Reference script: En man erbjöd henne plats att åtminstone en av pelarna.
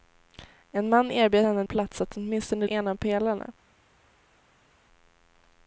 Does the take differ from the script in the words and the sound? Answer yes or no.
no